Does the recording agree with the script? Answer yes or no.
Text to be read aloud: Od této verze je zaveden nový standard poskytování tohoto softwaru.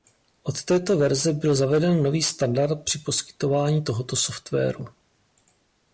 no